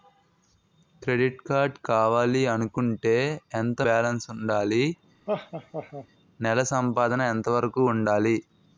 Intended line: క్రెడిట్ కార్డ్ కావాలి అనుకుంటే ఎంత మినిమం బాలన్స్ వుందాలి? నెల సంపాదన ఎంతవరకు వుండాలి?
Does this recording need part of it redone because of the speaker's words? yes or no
yes